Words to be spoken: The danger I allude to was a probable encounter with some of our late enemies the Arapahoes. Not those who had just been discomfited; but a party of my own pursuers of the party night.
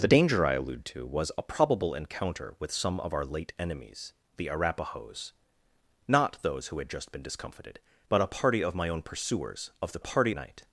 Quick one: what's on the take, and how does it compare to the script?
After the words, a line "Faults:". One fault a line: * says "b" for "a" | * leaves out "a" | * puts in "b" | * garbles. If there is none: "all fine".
The danger I allude to was a probable encounter with some of our late enemies the Arapahoes. Not those who had just been discomfited; but a party of my own pursuers of the party night.
Faults:
all fine